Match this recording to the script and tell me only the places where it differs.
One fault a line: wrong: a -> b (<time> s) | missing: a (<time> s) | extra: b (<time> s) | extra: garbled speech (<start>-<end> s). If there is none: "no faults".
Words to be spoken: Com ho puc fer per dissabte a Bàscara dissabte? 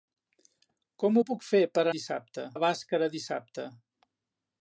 no faults